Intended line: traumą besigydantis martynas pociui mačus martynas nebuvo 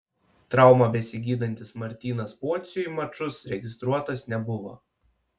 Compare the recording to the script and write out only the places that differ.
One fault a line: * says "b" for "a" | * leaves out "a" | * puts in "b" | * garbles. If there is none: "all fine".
* says "registruotas" for "martynas"